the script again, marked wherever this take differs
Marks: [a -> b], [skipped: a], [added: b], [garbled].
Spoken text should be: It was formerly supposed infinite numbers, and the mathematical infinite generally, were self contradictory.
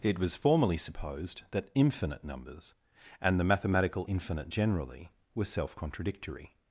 It was formerly supposed [added: that] infinite numbers, and the mathematical infinite generally, were self contradictory.